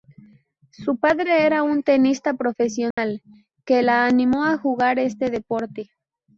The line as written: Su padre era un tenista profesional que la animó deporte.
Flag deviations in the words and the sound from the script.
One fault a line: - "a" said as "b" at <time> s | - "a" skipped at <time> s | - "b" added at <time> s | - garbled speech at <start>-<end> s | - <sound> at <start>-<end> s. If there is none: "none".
- dropout at 2.9-3.0 s
- "a jugar este" added at 4.5 s